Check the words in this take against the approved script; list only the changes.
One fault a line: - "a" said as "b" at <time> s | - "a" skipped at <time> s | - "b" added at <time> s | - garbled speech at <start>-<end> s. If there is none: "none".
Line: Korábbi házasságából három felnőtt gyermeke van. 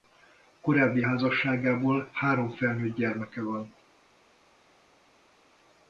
none